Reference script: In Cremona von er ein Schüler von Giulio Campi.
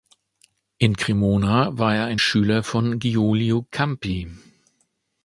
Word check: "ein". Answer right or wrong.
right